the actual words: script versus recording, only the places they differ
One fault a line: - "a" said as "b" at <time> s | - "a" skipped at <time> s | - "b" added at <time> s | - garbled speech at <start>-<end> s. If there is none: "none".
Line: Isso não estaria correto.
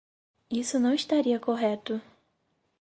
none